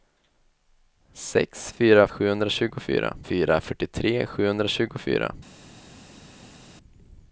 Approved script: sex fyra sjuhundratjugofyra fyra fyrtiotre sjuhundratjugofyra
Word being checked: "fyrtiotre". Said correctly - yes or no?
yes